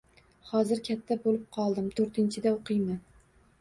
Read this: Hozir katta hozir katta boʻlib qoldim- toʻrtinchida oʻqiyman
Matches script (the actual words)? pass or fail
fail